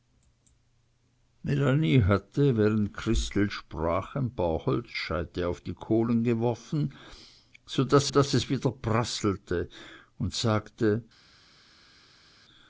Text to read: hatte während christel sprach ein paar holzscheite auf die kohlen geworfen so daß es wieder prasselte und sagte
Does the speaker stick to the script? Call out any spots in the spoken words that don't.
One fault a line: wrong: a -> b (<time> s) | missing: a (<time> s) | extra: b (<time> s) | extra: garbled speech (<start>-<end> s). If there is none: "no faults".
extra: daß (8.1 s)